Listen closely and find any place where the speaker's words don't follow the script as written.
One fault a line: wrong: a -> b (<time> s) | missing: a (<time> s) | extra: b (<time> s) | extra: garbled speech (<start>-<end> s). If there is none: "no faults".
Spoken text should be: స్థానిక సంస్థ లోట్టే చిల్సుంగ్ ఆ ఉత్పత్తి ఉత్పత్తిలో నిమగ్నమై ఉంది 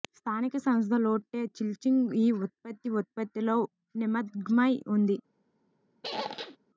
wrong: ఆ -> ఈ (2.1 s)